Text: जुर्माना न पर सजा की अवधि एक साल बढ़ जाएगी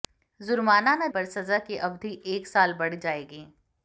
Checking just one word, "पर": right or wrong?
right